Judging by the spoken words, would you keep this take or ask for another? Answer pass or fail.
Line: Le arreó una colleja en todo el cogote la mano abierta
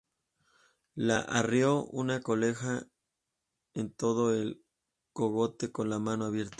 fail